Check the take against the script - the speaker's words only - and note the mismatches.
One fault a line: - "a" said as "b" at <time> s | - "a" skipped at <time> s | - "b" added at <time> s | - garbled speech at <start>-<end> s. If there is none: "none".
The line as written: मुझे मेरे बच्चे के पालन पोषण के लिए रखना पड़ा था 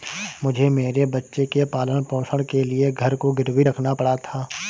- "घर को गिरवी" added at 2.9 s